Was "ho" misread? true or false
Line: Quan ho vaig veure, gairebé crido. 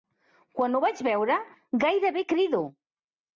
false